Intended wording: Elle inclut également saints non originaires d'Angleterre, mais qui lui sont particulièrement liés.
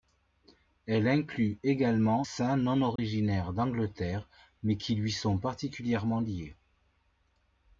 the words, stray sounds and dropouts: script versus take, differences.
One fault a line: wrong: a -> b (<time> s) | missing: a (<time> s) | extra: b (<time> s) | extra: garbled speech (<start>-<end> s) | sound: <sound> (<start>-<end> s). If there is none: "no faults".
sound: dropout (3.0-3.0 s)